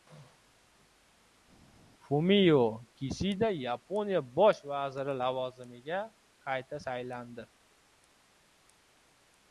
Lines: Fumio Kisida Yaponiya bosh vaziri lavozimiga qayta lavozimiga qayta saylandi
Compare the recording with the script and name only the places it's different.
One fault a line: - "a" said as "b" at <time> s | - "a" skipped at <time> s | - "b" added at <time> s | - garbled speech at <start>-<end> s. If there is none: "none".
- "lavozimiga qayta" skipped at 6.8 s